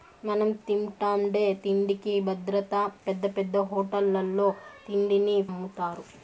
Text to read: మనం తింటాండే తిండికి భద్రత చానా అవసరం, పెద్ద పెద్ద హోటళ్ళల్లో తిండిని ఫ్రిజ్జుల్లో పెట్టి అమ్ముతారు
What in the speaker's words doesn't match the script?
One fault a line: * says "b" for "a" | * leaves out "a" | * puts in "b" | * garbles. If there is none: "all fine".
* leaves out "చానా అవసరం"
* leaves out "ఫ్రిజ్జుల్లో పెట్టి"